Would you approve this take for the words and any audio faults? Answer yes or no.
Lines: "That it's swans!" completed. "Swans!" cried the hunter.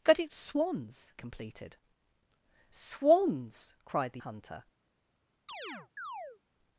no